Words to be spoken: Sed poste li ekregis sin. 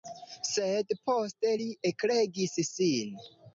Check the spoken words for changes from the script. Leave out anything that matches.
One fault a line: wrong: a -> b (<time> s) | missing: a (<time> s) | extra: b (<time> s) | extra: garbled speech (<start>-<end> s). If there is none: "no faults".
no faults